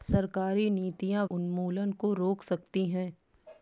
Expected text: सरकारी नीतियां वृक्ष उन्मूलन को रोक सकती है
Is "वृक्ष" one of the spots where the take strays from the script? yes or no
yes